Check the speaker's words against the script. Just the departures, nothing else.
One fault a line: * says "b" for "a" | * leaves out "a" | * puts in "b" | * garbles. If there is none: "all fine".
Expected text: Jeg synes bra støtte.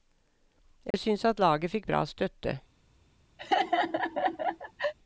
* puts in "at laget fikk"